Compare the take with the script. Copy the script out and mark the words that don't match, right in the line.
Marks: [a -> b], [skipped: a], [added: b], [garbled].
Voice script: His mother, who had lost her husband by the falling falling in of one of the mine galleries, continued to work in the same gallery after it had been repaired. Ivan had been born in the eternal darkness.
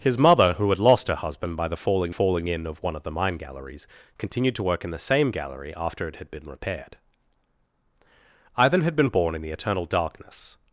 His mother, who had lost her husband by the falling falling in of one of the mine galleries, continued to work in the same gallery after it had been repaired. Ivan had been born in the eternal darkness.